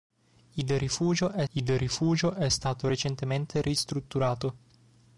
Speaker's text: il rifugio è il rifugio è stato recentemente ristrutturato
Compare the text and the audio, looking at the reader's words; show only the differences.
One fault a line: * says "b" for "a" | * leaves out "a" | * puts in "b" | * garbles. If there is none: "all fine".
all fine